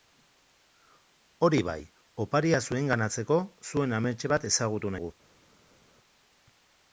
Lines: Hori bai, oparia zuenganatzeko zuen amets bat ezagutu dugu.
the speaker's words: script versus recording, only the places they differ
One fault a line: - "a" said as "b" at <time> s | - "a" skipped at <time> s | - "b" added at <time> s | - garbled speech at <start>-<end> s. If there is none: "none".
none